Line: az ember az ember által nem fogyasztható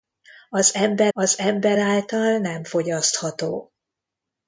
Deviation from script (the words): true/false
false